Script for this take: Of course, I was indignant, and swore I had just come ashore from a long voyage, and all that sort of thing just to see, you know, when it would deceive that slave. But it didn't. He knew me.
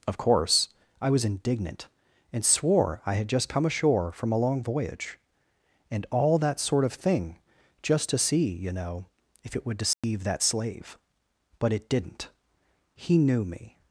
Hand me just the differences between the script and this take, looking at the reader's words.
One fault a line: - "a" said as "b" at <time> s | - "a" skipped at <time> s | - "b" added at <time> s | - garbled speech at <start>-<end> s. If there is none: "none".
- "when" said as "if" at 9.4 s